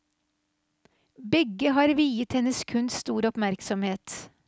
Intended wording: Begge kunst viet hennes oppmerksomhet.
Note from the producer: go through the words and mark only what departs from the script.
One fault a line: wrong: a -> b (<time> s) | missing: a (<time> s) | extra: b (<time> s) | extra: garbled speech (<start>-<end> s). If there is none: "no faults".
wrong: kunst -> har (1.7 s)
extra: kunst stor (2.6 s)